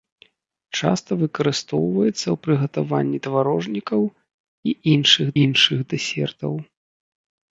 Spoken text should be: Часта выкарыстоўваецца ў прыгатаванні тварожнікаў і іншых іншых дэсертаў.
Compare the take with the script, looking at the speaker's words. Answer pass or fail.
pass